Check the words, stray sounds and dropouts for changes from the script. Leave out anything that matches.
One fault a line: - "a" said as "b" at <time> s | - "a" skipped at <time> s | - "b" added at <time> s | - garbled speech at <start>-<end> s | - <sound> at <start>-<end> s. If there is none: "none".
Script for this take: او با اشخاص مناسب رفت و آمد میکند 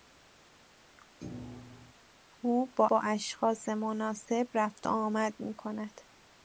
- thud at 1.2-1.9 s
- "با" added at 2.9 s